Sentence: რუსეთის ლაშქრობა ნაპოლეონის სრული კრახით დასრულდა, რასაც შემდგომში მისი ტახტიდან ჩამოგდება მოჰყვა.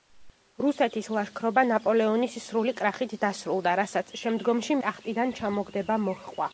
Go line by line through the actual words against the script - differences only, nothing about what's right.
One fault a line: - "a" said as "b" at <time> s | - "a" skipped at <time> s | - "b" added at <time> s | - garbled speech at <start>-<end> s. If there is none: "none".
- "მისი" skipped at 4.8 s